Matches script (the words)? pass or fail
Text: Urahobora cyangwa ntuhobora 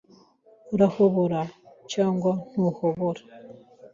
pass